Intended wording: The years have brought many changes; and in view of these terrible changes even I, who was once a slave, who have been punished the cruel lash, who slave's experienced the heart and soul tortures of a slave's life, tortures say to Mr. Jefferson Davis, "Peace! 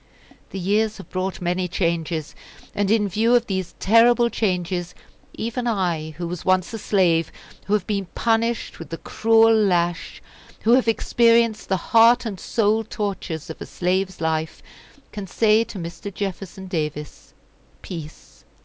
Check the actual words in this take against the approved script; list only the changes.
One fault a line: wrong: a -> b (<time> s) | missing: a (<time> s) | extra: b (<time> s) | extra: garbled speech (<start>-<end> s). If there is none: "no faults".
extra: with (8.8 s)
wrong: slave's -> have (10.7 s)
wrong: tortures -> can (15.1 s)